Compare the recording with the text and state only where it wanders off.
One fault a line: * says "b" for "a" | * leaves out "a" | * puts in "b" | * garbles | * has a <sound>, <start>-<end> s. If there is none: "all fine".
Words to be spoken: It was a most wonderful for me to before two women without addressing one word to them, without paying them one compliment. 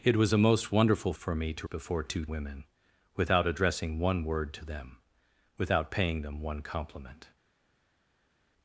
all fine